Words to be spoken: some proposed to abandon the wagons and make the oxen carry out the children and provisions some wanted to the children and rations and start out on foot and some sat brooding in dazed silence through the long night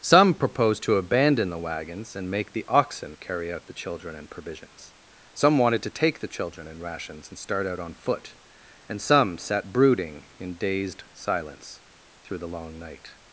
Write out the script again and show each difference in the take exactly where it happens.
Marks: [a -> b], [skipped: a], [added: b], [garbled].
some proposed to abandon the wagons and make the oxen carry out the children and provisions some wanted to [added: take] the children and rations and start out on foot and some sat brooding in dazed silence through the long night